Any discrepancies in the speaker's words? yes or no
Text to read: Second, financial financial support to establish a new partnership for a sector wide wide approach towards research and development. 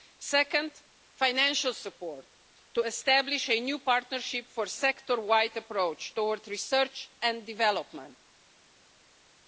yes